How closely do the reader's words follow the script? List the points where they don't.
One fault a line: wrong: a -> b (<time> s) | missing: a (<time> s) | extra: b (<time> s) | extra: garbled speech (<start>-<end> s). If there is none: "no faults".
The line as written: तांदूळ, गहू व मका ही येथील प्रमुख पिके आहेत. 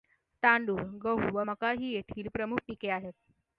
no faults